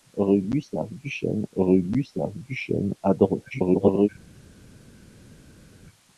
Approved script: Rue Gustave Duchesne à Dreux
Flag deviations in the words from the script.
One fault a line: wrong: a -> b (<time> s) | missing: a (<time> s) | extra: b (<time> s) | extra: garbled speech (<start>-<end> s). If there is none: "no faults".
extra: rue Gustave Duchesne (1.6 s)
extra: garbled speech (3.5-4.1 s)